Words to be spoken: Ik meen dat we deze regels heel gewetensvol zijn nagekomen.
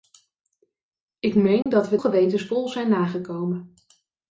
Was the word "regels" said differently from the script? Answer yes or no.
yes